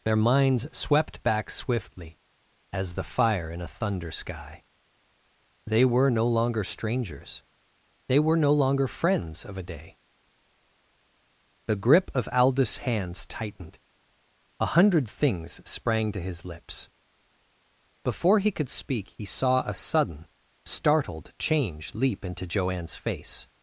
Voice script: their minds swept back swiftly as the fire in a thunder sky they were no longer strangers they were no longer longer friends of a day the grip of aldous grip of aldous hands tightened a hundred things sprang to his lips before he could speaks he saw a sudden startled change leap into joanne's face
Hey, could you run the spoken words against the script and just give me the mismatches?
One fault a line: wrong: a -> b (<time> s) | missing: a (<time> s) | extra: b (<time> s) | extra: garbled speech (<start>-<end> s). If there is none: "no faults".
missing: longer (8.9 s)
missing: grip of aldous (12.9 s)
wrong: speaks -> speak (18.7 s)